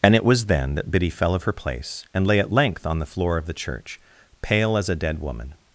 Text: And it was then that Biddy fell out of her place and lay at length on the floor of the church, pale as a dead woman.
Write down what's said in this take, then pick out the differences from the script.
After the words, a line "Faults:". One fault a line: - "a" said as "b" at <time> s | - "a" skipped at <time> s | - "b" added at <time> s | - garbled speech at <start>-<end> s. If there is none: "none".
And it was then that Biddy fell of her place and lay at length on the floor of the church, pale as a dead woman.
Faults:
- "out" skipped at 1.3 s